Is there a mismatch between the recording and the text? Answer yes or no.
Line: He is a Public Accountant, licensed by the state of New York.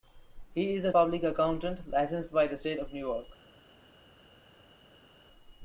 no